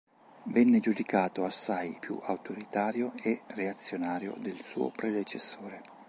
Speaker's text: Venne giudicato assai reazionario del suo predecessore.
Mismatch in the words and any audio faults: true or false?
true